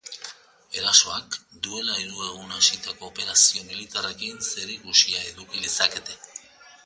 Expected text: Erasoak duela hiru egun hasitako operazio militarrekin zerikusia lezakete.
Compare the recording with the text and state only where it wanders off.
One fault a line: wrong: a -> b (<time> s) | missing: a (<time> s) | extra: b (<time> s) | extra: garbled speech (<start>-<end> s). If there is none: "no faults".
extra: eduki (5.3 s)